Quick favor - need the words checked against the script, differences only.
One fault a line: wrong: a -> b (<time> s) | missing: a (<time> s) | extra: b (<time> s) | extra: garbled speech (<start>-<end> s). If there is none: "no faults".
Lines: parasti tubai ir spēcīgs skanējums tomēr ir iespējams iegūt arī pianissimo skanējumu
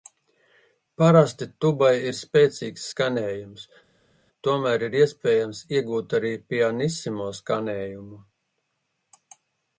no faults